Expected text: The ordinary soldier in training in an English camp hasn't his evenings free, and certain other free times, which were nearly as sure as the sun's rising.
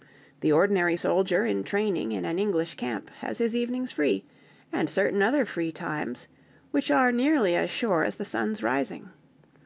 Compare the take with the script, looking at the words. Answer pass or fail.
fail